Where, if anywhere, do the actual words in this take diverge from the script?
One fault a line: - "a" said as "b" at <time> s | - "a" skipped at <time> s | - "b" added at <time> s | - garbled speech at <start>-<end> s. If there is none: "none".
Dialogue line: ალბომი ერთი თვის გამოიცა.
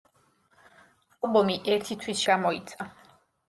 none